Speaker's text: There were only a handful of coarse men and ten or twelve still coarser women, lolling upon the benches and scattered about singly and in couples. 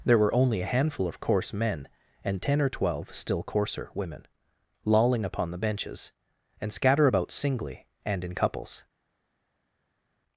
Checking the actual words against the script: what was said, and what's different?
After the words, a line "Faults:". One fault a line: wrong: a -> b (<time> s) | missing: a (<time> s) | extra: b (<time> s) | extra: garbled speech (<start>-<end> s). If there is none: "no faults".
There were only a handful of coarse men and ten or twelve still coarser women, lolling upon the benches and scatter about singly and in couples.
Faults:
wrong: scattered -> scatter (6.7 s)